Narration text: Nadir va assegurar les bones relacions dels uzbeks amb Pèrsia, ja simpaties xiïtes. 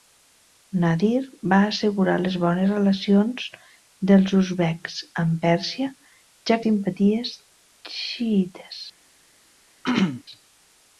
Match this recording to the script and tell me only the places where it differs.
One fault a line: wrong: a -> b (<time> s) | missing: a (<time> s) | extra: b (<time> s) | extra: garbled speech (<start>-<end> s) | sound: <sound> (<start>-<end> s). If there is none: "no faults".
sound: throat clearing (9.8-10.2 s)